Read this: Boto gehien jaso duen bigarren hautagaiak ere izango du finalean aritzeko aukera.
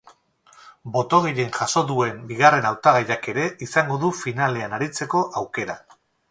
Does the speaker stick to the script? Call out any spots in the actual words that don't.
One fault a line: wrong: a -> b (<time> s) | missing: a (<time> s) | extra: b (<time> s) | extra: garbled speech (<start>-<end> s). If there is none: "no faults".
no faults